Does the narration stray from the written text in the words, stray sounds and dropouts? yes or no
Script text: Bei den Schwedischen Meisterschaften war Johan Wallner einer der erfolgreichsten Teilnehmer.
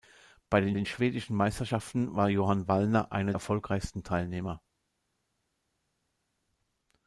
yes